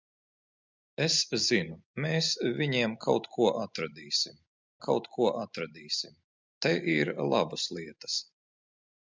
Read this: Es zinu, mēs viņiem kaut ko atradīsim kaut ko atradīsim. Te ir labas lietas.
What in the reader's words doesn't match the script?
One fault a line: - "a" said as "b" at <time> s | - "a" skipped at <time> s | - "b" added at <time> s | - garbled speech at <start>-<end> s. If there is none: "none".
none